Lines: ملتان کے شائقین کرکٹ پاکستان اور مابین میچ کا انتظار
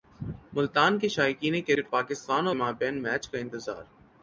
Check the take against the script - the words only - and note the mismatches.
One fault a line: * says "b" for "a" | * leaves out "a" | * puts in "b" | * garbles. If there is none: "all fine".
all fine